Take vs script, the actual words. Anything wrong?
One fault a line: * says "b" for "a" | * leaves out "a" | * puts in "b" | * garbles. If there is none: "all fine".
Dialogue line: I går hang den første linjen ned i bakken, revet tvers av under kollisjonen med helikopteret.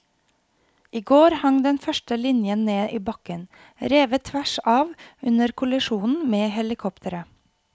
all fine